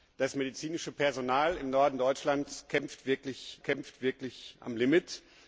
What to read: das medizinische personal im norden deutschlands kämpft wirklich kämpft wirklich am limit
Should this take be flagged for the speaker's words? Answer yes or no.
no